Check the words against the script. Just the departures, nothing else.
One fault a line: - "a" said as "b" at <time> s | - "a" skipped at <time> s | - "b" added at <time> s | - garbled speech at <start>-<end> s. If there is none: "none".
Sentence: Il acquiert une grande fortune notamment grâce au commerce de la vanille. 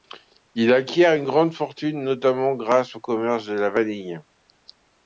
none